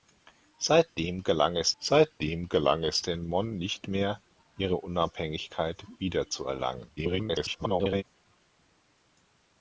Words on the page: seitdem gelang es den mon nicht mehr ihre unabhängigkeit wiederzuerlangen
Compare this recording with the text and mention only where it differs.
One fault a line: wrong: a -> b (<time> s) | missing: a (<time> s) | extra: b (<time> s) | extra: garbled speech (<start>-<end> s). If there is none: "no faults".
extra: seitdem gelang es (1.8 s)
extra: garbled speech (7.0-8.0 s)